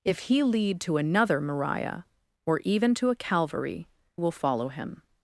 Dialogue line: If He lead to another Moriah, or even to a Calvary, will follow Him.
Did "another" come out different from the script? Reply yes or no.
no